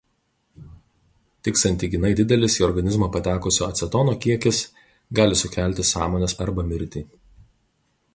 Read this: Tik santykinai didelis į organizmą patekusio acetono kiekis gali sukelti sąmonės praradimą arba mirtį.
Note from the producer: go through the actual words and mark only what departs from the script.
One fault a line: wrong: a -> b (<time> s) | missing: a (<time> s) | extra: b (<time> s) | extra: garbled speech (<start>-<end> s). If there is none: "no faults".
missing: praradimą (6.4 s)